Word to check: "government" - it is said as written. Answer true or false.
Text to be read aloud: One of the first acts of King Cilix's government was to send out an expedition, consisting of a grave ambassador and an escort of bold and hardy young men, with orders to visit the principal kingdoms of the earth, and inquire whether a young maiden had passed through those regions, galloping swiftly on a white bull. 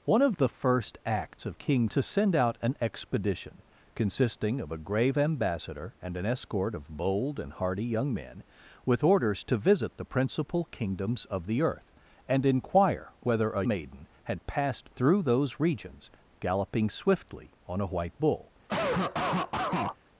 false